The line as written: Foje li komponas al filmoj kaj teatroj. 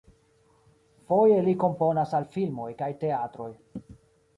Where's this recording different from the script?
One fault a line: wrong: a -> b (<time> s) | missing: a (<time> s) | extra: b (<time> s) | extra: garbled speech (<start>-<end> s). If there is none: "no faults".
no faults